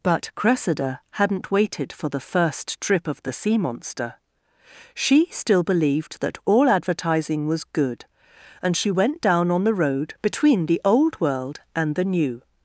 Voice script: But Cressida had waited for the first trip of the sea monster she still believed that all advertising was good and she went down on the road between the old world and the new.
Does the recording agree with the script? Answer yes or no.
no